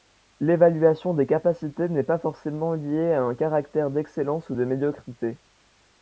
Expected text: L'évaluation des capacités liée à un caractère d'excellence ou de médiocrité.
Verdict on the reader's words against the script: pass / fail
fail